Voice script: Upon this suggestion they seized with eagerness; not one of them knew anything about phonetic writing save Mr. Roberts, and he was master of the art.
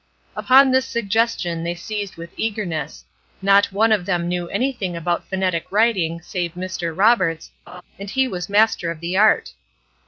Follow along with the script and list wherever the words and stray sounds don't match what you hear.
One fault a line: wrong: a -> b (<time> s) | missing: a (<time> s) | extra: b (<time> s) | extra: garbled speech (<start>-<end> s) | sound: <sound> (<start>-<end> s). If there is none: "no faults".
sound: laugh (7.7-7.8 s)